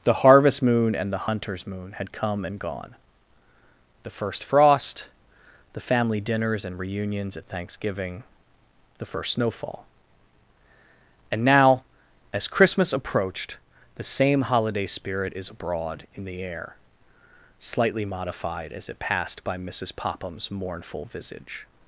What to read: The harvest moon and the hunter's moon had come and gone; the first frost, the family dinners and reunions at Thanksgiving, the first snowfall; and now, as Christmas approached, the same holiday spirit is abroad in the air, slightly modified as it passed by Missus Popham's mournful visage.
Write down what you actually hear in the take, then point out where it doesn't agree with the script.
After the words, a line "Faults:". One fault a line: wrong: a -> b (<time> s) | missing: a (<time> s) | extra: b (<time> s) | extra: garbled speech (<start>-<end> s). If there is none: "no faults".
The harvest moon and the hunter's moon had come and gone; the first frost, the family dinners and reunions at Thanksgiving, the first snowfall; and now, as Christmas approached, the same holiday spirit is abroad in the air, slightly modified as it passed by Missus Popham's mournful visage.
Faults:
no faults